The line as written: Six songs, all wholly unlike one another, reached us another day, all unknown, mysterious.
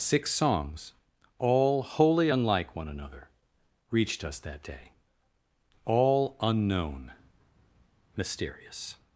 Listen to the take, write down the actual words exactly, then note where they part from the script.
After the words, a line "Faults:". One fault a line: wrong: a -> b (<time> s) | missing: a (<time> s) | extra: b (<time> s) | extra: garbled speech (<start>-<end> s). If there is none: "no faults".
Six songs, all wholly unlike one another, reached us that day, all unknown, mysterious.
Faults:
wrong: another -> that (4.4 s)